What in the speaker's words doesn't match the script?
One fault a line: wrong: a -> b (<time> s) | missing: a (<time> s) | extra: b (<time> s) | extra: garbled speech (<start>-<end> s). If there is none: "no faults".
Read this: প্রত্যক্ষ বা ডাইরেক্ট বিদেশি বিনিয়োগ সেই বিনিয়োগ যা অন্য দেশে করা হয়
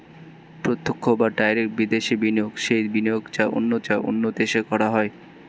extra: যা অন্য (3.8 s)